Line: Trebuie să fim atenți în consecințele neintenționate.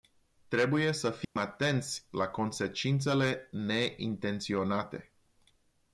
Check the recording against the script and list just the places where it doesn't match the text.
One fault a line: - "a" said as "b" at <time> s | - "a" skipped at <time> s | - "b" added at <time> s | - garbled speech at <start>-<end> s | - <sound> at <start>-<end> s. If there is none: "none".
- dropout at 1.2-1.4 s
- "în" said as "la" at 2.1 s